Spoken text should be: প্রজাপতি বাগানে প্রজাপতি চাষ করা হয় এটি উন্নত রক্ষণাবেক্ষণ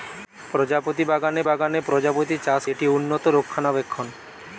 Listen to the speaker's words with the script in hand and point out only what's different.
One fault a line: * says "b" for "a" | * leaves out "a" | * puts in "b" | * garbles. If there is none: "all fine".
* puts in "বাগানে"
* leaves out "করা হয়"